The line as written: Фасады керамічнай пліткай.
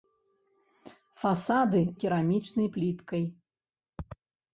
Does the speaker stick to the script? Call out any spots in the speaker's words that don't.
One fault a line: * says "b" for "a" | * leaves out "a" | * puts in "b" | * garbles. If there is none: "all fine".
all fine